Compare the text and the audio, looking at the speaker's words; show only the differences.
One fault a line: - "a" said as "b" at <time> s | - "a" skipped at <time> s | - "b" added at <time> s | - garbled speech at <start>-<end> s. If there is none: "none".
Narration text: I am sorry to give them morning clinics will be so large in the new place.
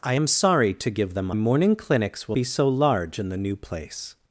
none